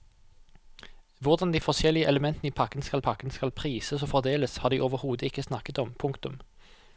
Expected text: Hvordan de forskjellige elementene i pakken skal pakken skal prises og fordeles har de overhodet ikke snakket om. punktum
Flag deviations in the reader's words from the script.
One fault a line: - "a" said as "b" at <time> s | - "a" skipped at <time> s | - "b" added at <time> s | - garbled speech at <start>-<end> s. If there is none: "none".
none